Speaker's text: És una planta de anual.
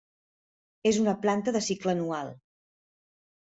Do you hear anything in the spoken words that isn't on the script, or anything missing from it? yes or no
yes